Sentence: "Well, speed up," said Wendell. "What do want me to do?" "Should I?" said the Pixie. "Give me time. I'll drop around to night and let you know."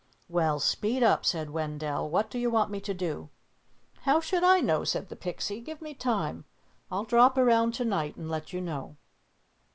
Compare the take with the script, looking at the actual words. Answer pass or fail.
fail